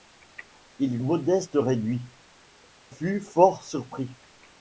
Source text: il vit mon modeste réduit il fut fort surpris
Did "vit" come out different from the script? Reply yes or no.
yes